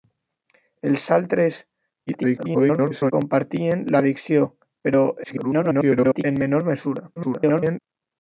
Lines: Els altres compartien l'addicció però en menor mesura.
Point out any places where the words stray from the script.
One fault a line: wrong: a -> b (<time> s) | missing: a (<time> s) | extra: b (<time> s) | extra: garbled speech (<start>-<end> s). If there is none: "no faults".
extra: garbled speech (2.1-3.1 s)
extra: garbled speech (5.2-6.2 s)
extra: garbled speech (7.2-7.8 s)